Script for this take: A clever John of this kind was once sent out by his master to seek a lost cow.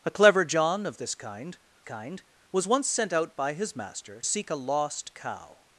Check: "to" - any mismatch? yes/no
yes